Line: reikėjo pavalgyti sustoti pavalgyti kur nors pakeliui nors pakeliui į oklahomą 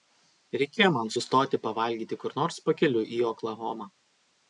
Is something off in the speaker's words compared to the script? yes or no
yes